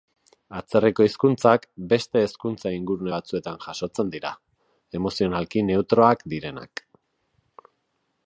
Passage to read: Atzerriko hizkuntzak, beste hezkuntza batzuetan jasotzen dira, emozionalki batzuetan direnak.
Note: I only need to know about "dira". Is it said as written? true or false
true